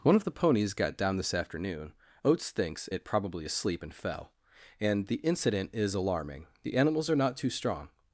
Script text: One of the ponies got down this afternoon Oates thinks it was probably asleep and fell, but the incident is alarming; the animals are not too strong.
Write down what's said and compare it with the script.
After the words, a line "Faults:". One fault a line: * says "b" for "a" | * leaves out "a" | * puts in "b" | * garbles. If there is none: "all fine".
One of the ponies got down this afternoon Oates thinks it probably asleep and fell, and the incident is alarming; the animals are not too strong.
Faults:
* leaves out "was"
* says "and" for "but"